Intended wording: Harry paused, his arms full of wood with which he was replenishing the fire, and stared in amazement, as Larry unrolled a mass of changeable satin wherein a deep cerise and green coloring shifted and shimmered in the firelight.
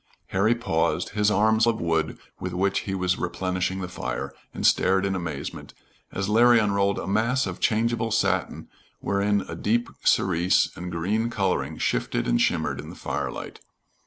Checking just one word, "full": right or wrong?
wrong